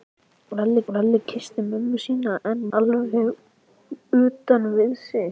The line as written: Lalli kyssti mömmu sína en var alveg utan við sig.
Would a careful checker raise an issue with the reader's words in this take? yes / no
yes